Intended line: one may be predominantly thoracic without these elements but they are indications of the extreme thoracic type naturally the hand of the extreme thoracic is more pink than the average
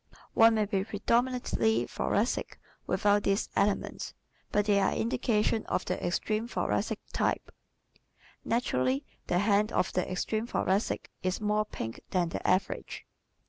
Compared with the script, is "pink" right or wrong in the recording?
right